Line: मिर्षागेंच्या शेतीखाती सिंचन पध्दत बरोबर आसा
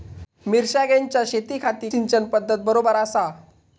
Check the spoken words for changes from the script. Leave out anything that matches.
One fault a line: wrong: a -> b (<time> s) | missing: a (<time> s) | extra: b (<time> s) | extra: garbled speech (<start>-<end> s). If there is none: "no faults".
no faults